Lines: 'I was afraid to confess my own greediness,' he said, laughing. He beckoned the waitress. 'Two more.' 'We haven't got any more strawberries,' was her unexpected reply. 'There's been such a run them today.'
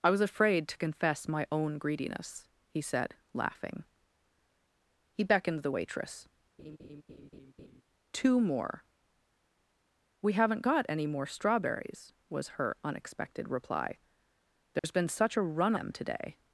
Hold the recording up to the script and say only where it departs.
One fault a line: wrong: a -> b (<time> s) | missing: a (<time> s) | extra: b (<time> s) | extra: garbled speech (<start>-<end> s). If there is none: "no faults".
no faults